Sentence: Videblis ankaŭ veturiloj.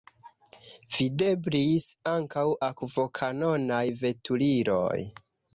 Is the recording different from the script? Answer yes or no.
yes